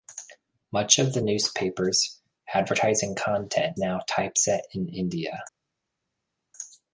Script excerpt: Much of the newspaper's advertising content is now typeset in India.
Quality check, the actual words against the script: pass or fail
fail